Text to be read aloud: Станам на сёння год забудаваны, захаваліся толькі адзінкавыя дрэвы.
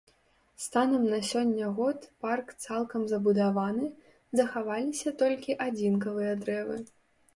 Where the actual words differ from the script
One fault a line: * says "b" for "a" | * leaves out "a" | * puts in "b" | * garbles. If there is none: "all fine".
* puts in "парк цалкам"